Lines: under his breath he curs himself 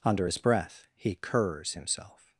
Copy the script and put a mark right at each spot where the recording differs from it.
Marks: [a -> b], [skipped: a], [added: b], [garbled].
under his breath he curs himself